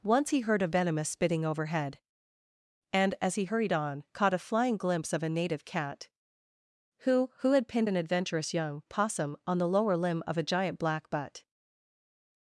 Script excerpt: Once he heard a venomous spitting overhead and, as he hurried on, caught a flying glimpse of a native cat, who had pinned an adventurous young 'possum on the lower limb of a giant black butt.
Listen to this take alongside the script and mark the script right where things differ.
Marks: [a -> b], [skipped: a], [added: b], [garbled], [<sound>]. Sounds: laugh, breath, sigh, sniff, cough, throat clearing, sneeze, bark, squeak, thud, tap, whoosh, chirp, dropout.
Once he heard a venomous spitting overhead and, as he hurried on, caught a flying glimpse of a native cat, who [added: who] had pinned an adventurous young 'possum on the lower limb of a giant black butt.